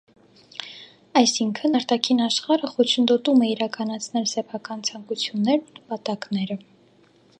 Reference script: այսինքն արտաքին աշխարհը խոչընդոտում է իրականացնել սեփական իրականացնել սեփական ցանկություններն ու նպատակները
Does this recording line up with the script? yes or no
no